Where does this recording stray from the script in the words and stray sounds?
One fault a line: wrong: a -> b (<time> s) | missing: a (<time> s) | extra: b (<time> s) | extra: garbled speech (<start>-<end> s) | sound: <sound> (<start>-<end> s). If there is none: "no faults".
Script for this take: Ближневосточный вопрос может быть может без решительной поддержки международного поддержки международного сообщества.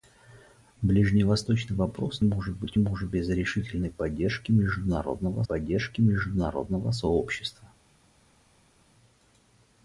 no faults